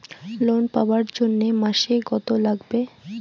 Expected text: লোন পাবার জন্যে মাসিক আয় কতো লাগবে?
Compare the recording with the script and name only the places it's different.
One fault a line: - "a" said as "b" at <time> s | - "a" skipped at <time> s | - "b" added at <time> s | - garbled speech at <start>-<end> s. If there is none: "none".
- "আয়" skipped at 2.0 s